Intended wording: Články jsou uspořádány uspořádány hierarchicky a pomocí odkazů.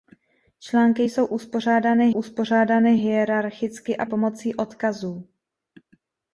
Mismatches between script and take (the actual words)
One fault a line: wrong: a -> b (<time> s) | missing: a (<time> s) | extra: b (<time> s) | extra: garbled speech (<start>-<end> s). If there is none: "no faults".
no faults